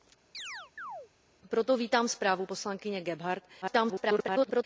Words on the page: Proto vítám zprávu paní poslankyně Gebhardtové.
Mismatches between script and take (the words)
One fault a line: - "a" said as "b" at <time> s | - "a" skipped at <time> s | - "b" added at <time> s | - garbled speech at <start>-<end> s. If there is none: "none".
- "paní" skipped at 2.5 s
- garbled speech at 3.6-4.6 s